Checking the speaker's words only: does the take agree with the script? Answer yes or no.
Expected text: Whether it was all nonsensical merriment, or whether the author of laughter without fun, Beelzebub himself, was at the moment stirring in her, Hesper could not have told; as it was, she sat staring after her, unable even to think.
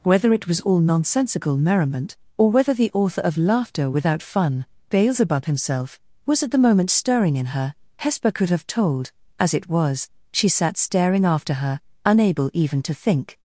no